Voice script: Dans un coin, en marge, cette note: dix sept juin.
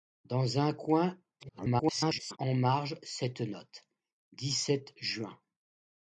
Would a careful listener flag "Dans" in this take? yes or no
no